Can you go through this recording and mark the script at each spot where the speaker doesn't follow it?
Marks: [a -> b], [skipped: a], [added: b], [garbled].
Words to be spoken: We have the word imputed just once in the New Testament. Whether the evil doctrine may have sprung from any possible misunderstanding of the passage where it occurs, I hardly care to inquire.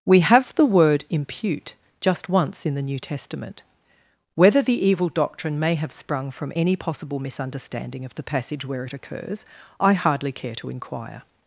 We have the word [imputed -> impute] just once in the New Testament. Whether the evil doctrine may have sprung from any possible misunderstanding of the passage where it occurs, I hardly care to inquire.